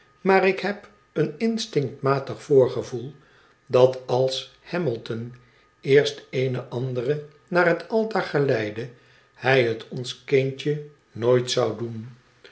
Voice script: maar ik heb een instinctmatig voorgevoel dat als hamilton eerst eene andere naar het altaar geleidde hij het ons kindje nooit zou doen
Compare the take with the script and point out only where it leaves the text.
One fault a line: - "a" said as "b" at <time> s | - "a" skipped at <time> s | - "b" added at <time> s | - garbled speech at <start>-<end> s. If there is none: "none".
none